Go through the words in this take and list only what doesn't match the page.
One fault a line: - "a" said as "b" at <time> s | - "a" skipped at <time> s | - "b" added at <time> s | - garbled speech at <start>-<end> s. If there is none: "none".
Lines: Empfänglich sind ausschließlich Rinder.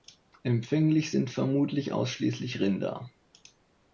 - "vermutlich" added at 1.3 s